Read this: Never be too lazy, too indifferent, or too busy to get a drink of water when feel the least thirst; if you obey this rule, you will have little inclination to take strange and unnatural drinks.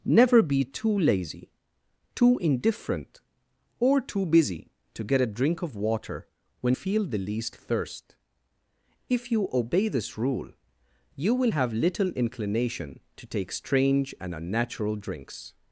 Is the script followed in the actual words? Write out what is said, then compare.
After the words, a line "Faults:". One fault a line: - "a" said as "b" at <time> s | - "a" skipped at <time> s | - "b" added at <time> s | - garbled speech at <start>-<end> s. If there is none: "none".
Never be too lazy, too indifferent, or too busy to get a drink of water when feel the least thirst; if you obey this rule, you will have little inclination to take strange and unnatural drinks.
Faults:
none